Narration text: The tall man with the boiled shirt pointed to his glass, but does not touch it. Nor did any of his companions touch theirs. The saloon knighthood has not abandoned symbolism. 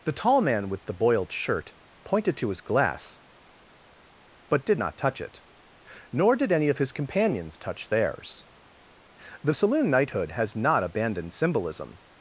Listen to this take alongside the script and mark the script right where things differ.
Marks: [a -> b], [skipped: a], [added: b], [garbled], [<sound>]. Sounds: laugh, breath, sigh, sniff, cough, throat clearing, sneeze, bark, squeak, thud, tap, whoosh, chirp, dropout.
The tall man with the boiled shirt pointed to his glass, but [does -> did] not touch it. Nor did any of his companions touch theirs. The saloon knighthood has not abandoned symbolism.